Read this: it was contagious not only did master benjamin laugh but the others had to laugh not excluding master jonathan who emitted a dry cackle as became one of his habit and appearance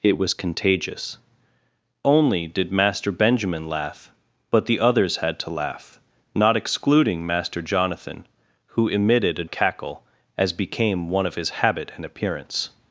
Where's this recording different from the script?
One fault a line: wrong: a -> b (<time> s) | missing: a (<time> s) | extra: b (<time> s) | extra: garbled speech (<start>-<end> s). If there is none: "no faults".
missing: not (1.2 s)
missing: dry (9.4 s)